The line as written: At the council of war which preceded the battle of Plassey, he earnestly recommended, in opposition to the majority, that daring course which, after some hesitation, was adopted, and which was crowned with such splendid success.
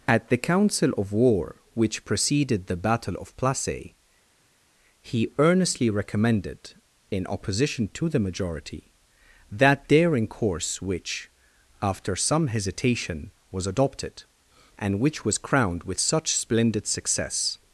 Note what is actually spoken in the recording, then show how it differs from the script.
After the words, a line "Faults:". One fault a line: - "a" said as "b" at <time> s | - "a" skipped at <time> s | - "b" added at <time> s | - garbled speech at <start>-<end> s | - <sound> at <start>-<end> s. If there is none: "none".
At the council of war which preceded the battle of Plassey, he earnestly recommended, in opposition to the majority, that daring course which, after some hesitation, was adopted, and which was crowned with such splendid success.
Faults:
none